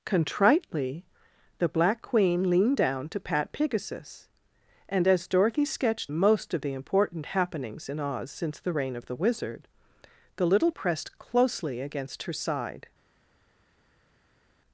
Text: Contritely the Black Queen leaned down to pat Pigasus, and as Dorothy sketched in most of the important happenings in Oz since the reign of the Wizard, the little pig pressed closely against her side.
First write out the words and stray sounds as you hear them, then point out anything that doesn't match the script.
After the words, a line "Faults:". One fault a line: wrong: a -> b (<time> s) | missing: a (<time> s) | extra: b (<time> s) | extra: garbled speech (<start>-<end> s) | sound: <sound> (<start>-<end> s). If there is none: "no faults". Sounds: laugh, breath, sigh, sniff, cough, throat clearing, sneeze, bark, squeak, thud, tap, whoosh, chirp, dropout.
Contritely the Black Queen leaned down to pat Pigasus, and as Dorothy sketched most of the important happenings in Oz since the reign of the Wizard, the little pressed closely against her side.
Faults:
missing: in (6.1 s)
missing: pig (10.7 s)